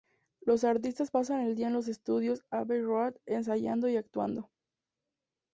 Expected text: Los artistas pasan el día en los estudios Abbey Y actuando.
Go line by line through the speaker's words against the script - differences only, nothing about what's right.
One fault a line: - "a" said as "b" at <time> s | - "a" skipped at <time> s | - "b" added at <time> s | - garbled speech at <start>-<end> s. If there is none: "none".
- "Road ensayando" added at 2.8 s